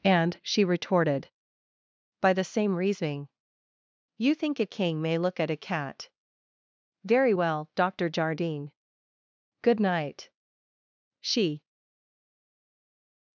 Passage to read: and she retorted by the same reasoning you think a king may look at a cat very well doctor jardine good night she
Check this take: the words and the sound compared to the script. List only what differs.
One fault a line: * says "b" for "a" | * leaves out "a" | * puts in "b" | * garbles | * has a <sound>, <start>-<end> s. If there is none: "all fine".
all fine